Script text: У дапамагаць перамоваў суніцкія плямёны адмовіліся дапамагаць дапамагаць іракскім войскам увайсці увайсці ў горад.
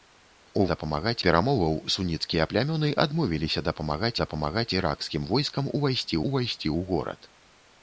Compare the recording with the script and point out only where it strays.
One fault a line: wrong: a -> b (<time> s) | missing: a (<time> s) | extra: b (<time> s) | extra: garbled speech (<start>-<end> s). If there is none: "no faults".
no faults